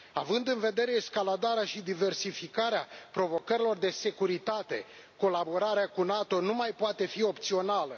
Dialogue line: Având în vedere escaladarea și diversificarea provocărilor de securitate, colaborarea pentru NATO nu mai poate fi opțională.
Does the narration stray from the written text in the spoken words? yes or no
yes